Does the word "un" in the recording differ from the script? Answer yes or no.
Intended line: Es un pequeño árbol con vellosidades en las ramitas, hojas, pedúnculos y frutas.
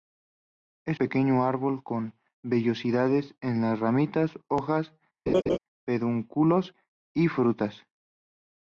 yes